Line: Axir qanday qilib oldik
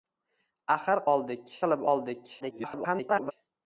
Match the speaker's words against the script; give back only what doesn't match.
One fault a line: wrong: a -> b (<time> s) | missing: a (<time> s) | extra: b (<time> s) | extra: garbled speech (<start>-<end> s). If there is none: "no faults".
wrong: qanday -> oldik (1.1 s)
extra: garbled speech (2.4-3.3 s)